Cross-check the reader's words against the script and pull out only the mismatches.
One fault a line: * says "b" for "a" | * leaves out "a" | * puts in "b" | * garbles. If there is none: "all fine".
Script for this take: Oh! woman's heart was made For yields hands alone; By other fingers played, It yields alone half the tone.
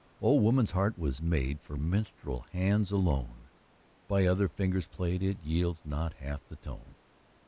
* says "minstrel" for "yields"
* says "not" for "alone"